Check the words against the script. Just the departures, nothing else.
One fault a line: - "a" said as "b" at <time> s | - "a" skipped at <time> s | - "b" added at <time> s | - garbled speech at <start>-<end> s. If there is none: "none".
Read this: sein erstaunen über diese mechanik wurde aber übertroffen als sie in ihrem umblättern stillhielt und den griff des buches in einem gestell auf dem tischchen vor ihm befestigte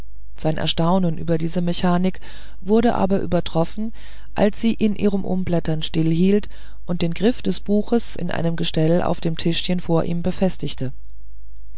none